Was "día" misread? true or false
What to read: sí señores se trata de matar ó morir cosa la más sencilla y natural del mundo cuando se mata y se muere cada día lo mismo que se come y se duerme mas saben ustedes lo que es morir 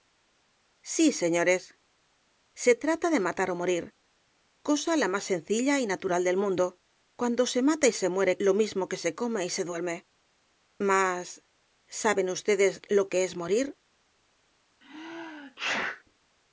true